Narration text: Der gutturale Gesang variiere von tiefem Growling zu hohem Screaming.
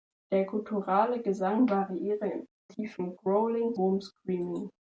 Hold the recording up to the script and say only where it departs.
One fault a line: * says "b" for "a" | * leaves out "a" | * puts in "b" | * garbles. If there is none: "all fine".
* leaves out "von"
* leaves out "zu"